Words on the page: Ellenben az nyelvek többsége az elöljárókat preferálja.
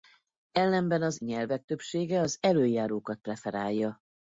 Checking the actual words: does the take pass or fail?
pass